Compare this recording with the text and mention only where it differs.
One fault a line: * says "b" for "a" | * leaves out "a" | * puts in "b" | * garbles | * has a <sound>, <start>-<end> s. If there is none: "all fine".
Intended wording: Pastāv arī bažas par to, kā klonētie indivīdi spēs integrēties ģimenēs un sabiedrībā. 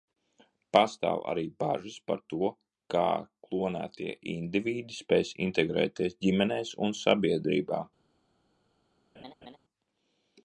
* has a laugh, 9.1-9.6 s